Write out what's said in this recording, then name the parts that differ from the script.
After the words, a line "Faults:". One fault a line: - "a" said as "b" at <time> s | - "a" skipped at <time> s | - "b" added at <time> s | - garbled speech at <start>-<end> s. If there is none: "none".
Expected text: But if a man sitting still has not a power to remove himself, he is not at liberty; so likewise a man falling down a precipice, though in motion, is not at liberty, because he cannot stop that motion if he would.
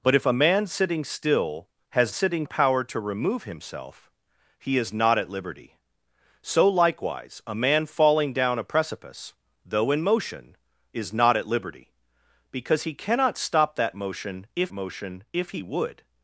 But if a man sitting still has sitting a power to remove himself, he is not at liberty; so likewise a man falling down a precipice, though in motion, is not at liberty, because he cannot stop that motion if motion if he would.
Faults:
- "not" said as "sitting" at 2.1 s
- "motion if" added at 14.7 s